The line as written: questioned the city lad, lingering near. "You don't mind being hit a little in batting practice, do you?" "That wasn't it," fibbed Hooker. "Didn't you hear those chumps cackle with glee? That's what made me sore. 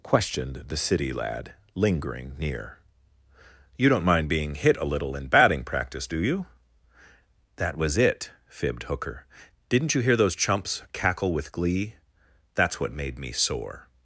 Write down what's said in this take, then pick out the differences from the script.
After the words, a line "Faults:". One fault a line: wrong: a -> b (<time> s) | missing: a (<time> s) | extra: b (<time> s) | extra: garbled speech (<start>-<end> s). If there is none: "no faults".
questioned the city lad, lingering near. "You don't mind being hit a little in batting practice, do you?" "That was it," fibbed Hooker. "Didn't you hear those chumps cackle with glee? That's what made me sore.
Faults:
wrong: wasn't -> was (7.8 s)